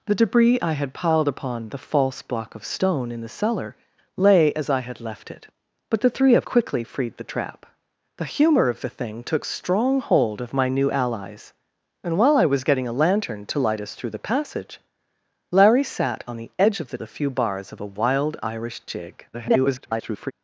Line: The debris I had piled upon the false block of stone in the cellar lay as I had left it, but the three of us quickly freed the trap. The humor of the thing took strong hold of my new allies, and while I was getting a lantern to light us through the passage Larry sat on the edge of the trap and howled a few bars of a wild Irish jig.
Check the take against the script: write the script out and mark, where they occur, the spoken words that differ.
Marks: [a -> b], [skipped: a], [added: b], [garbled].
The debris I had piled upon the false block of stone in the cellar lay as I had left it, but the three of [skipped: us] quickly freed the trap. The humor of the thing took strong hold of my new allies, and while I was getting a lantern to light us through the passage Larry sat on the edge of the [skipped: trap and howled] a few bars of a wild Irish jig. [garbled]